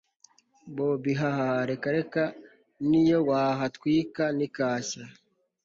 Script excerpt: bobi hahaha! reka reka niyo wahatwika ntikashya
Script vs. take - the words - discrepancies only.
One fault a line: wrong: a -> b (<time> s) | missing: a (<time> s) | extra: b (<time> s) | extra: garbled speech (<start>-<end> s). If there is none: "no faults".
no faults